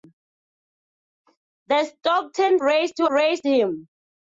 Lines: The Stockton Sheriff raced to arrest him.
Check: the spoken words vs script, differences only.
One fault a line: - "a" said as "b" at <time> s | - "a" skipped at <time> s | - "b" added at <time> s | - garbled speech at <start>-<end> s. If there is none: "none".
- "Sheriff" skipped at 2.6 s
- "arrest" said as "raced" at 3.1 s